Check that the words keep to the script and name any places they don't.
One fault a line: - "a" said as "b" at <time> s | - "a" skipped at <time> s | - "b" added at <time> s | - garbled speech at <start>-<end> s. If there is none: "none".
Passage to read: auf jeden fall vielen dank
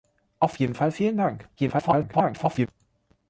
- garbled speech at 1.6-2.7 s